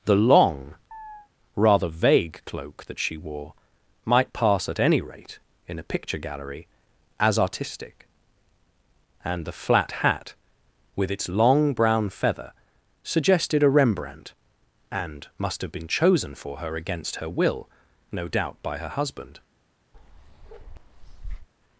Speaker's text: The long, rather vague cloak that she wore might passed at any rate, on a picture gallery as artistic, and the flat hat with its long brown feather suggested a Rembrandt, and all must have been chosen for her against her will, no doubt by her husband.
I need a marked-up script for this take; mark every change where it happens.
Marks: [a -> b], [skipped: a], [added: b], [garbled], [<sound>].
The long, [chirp] rather vague cloak that she wore might [passed -> pass] at any rate, [on -> in] a picture gallery as artistic, and the flat hat with its long brown feather suggested a Rembrandt, and [skipped: all] must have been chosen for her against her will, no doubt by her husband. [bark]